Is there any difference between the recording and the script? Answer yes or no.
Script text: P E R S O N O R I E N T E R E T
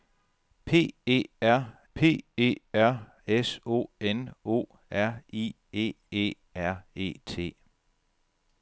yes